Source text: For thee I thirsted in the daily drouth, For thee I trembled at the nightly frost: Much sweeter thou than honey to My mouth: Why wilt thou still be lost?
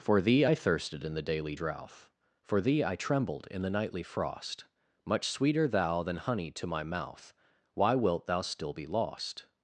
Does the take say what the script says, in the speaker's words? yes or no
no